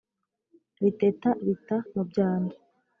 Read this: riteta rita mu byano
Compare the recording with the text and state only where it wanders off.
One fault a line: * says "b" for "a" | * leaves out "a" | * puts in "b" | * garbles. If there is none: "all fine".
all fine